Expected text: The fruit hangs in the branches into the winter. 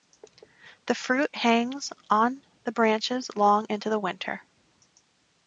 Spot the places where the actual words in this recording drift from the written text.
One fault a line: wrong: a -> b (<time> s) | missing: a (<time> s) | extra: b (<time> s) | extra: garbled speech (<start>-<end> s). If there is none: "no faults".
wrong: in -> on (2.1 s)
extra: long (3.4 s)